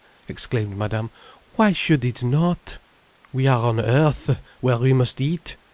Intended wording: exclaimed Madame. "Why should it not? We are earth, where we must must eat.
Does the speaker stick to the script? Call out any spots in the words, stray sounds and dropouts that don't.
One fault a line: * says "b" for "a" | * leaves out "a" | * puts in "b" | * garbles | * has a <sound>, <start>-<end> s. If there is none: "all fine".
* puts in "on"
* leaves out "must"